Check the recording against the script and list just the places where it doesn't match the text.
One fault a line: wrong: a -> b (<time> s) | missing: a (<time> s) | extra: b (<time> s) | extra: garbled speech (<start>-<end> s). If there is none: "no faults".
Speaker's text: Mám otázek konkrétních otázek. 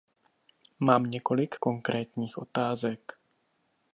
wrong: otázek -> několik (1.0 s)